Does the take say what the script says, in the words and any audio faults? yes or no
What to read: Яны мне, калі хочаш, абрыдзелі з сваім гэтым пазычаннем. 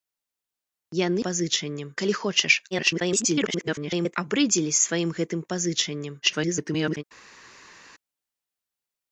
no